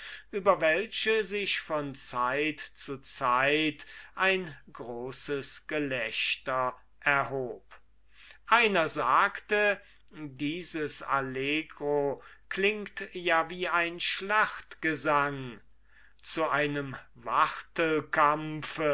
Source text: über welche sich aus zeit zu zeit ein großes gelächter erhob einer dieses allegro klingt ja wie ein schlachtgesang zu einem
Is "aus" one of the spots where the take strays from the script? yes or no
yes